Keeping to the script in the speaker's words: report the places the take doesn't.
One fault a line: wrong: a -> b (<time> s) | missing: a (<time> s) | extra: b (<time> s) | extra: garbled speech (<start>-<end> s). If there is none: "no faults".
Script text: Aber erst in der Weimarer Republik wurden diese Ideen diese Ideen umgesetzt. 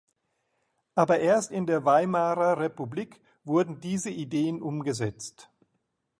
missing: diese Ideen (4.6 s)